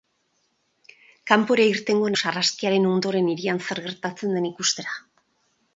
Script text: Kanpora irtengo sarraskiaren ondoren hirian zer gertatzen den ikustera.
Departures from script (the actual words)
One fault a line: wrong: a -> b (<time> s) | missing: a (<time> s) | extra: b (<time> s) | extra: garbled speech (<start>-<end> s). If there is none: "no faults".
no faults